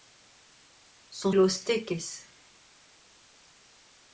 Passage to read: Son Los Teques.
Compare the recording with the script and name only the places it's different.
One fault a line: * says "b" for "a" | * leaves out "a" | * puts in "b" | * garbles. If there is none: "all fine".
all fine